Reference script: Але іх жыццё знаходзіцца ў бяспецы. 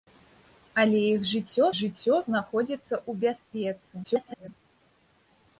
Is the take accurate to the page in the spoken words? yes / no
no